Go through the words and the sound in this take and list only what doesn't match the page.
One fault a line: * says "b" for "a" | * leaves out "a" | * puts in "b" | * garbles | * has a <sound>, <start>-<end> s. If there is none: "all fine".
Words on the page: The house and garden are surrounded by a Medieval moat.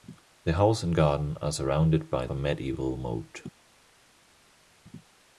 all fine